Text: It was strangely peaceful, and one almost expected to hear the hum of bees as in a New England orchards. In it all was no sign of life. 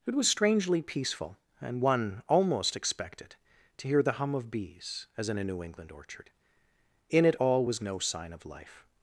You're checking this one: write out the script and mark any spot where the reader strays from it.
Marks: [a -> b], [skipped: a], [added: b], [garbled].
It was strangely peaceful, and one almost expected to hear the hum of bees as in a New England [orchards. -> orchard] In it all was no sign of life.